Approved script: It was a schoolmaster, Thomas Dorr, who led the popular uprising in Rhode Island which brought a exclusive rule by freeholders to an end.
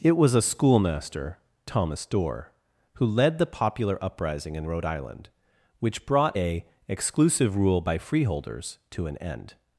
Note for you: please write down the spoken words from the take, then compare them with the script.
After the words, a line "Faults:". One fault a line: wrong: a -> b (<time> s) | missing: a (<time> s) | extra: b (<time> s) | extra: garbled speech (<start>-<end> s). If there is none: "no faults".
It was a schoolmaster, Thomas Dorr, who led the popular uprising in Rhode Island which brought a exclusive rule by freeholders to an end.
Faults:
no faults